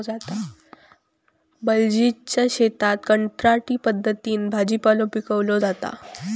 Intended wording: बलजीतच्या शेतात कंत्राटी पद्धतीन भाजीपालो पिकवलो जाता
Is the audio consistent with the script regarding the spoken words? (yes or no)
yes